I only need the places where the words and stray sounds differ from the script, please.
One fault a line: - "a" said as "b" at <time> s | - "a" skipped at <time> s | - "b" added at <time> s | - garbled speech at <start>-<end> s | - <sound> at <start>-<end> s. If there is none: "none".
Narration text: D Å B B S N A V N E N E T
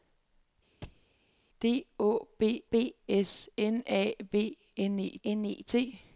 - thud at 0.8-1.1 s